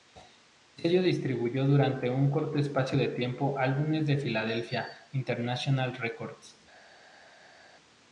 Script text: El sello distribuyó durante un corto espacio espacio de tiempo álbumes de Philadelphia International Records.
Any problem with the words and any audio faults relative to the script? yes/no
yes